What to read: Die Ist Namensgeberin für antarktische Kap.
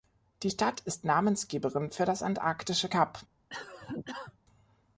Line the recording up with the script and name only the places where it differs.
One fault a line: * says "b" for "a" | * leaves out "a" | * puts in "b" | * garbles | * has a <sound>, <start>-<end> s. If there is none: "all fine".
* puts in "Stadt"
* puts in "das"
* has a cough, 3.5-4.4 s